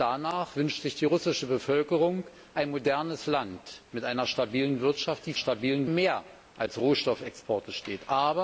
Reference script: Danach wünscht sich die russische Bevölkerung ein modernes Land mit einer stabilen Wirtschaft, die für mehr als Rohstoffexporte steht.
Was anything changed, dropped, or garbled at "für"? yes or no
yes